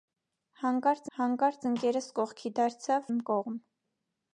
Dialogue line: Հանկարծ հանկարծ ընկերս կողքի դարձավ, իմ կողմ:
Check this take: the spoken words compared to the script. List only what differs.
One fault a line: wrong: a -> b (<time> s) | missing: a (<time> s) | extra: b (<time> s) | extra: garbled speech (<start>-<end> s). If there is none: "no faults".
no faults